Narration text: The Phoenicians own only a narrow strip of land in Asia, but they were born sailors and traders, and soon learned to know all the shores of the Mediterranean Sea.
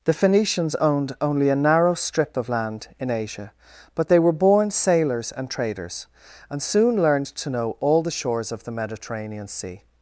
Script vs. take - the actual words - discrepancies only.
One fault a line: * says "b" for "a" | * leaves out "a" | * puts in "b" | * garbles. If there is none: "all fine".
* says "owned" for "own"